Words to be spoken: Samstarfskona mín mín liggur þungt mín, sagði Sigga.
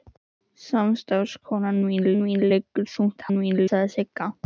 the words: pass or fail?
pass